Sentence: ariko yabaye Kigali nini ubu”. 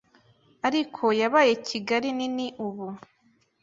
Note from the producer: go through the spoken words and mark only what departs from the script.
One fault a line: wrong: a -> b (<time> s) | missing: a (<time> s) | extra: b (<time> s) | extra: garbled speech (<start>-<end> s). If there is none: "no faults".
no faults